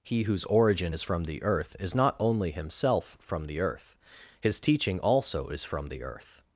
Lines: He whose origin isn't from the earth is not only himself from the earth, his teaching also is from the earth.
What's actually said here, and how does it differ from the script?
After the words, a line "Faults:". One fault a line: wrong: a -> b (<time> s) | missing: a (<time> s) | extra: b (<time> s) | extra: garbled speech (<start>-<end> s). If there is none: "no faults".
He whose origin is from the earth is not only himself from the earth, his teaching also is from the earth.
Faults:
wrong: isn't -> is (0.9 s)